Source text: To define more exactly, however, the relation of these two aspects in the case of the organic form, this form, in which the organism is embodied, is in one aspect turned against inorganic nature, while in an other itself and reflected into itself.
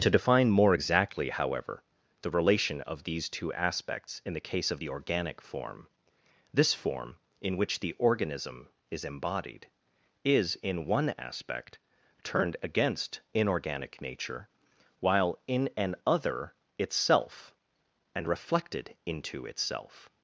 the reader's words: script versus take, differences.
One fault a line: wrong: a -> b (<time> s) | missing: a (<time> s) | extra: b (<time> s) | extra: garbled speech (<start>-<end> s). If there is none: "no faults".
no faults